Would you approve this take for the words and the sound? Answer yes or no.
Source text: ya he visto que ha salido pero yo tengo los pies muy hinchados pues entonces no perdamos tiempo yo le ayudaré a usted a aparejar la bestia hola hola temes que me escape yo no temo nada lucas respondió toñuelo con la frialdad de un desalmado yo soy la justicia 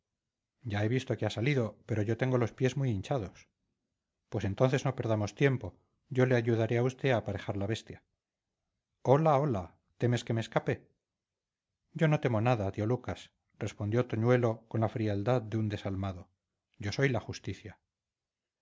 no